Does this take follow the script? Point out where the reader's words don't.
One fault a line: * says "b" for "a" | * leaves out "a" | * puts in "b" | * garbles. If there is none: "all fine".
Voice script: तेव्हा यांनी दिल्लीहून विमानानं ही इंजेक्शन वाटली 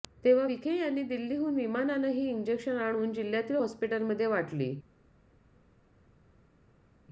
* puts in "विखे"
* puts in "आणून जिल्ह्यातील हॉस्पिटलमध्ये"